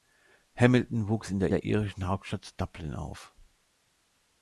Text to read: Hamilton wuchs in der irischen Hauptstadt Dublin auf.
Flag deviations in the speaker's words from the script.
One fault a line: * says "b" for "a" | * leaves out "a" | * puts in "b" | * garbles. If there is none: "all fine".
* puts in "der"